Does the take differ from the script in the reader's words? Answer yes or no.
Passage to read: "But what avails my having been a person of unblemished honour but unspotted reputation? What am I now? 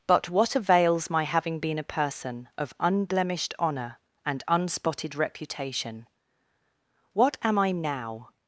yes